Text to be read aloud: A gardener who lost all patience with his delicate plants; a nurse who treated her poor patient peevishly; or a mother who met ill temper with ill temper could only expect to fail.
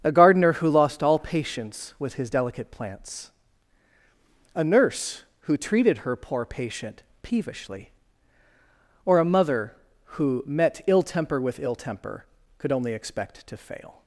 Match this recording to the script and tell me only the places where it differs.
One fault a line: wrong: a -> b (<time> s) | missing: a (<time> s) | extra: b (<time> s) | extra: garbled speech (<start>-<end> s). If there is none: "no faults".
no faults